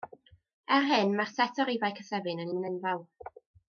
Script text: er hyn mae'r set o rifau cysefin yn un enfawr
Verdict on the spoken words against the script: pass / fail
pass